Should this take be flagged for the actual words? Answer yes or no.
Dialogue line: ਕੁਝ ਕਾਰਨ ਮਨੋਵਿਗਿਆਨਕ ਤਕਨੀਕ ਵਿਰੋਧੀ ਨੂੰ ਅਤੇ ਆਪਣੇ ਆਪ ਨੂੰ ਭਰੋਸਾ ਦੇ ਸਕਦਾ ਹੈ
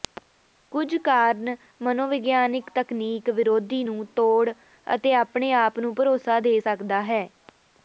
yes